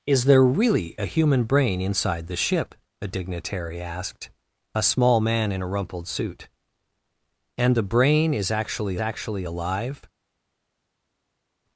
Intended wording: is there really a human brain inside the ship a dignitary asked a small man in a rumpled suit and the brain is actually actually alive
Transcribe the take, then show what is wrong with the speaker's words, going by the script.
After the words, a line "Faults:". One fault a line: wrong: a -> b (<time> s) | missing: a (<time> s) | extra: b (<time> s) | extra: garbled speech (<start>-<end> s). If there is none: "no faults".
is there really a human brain inside the ship a dignitary asked a small man in a rumpled suit and the brain is actually actually alive
Faults:
no faults